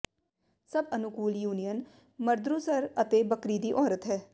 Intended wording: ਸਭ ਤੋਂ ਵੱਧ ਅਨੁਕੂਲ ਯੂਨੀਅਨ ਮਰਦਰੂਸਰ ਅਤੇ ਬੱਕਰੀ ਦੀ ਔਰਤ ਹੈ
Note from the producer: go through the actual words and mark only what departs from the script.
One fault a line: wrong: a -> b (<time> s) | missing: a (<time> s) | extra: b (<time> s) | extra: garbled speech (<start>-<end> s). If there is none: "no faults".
missing: ਤੋਂ ਵੱਧ (0.8 s)